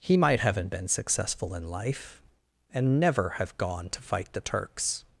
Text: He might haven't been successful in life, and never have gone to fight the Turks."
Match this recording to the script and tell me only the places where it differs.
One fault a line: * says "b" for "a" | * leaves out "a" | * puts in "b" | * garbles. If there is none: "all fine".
all fine